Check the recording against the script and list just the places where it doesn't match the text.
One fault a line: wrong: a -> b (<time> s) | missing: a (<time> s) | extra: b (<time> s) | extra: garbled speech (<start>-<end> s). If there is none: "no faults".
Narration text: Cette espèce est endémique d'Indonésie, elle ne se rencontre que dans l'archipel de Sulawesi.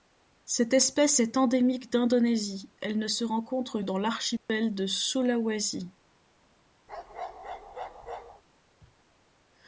missing: que (3.8 s)